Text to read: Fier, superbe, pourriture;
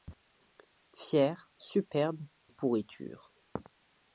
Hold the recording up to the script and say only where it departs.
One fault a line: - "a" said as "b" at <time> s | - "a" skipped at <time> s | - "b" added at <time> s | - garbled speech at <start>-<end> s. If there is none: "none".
none